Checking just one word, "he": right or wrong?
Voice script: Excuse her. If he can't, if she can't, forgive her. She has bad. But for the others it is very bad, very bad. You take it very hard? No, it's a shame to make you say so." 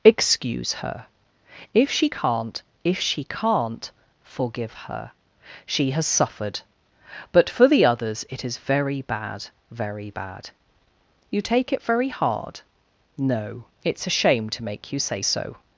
wrong